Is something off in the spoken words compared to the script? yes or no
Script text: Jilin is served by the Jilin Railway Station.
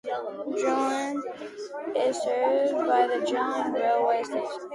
no